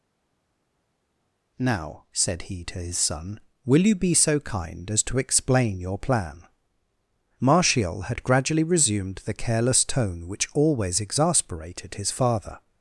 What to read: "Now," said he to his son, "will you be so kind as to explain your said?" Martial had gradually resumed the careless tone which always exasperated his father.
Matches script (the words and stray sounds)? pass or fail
fail